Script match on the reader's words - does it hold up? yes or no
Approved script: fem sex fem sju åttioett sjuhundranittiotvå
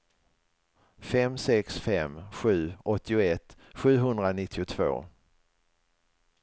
yes